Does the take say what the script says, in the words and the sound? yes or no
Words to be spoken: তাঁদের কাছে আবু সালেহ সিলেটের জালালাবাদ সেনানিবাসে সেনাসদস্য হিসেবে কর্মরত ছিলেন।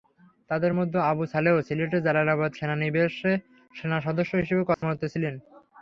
no